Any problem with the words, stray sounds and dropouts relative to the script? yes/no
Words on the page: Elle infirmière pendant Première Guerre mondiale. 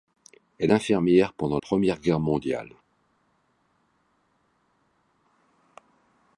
no